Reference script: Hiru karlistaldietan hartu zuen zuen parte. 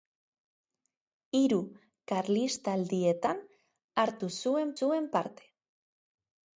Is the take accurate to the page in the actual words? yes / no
yes